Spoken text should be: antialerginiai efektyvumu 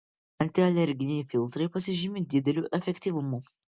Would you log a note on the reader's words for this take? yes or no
yes